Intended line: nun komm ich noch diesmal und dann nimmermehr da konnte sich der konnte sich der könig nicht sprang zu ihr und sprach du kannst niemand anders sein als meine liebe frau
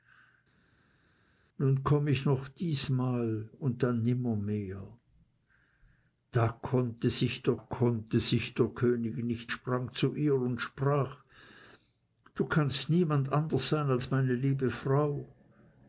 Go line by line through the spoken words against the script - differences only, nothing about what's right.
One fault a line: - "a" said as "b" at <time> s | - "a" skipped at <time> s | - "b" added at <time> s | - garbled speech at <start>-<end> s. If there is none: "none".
none